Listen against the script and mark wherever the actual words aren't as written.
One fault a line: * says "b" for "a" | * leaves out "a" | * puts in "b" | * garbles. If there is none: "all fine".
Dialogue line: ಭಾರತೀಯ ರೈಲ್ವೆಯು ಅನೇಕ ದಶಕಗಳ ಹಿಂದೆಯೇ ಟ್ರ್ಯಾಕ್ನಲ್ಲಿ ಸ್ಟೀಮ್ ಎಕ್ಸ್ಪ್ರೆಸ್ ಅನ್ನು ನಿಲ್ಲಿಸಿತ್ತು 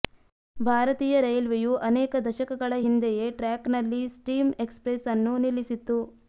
all fine